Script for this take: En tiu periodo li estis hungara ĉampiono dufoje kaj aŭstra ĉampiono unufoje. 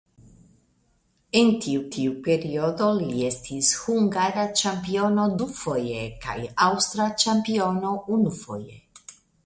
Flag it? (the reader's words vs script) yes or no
yes